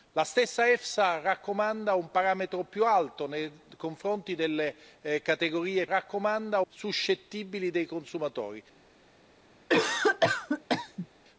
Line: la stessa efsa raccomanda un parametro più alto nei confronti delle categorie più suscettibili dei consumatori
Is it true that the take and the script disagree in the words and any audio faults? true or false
true